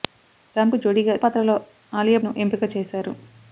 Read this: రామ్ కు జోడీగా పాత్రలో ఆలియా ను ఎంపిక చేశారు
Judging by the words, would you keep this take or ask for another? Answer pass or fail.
pass